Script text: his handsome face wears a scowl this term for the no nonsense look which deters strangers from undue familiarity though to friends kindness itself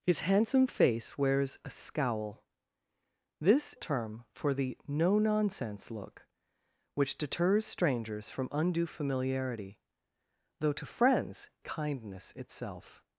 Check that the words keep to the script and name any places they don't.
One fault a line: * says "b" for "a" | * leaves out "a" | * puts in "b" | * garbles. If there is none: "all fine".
all fine